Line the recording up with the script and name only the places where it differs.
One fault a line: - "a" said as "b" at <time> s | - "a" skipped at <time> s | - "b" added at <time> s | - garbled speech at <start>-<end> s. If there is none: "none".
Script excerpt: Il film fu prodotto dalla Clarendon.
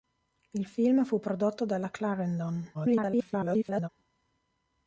- garbled speech at 2.7-3.9 s